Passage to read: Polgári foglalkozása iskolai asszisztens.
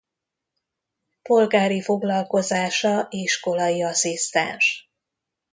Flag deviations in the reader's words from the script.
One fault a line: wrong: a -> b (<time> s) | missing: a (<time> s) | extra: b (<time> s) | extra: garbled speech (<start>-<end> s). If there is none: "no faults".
no faults